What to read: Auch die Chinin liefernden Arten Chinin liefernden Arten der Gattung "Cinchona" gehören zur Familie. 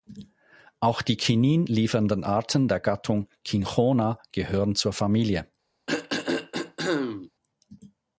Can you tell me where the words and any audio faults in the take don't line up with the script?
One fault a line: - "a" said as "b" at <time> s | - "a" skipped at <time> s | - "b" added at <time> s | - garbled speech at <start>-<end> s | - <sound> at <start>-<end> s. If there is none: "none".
- "Chinin liefernden Arten" skipped at 2.7 s
- throat clearing at 5.9-7.3 s